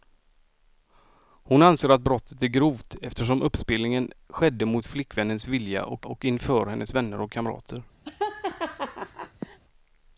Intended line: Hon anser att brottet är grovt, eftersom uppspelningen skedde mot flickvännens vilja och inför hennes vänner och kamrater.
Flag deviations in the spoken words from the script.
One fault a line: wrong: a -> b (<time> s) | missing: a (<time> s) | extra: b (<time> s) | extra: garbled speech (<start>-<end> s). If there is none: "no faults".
extra: och (6.0 s)